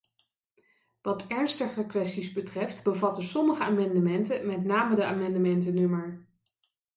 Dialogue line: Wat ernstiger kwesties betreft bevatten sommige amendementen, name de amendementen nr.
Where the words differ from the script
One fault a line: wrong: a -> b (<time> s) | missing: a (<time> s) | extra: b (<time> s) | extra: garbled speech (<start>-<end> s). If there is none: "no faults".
extra: met (4.5 s)